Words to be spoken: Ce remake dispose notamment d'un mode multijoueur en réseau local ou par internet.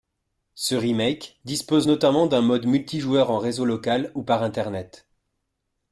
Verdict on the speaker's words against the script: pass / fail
pass